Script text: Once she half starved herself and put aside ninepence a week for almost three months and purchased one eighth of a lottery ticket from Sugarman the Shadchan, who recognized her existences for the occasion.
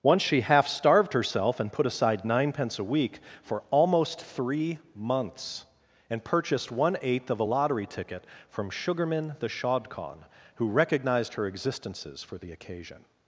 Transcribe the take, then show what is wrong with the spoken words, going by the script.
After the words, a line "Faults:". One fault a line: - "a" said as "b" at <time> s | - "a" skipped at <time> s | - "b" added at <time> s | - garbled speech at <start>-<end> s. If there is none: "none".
Once she half starved herself and put aside ninepence a week for almost three months and purchased one eighth of a lottery ticket from Sugarman the Shadchan, who recognized her existences for the occasion.
Faults:
none